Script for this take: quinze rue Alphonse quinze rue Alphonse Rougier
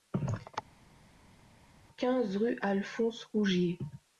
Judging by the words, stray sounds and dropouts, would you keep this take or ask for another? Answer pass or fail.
fail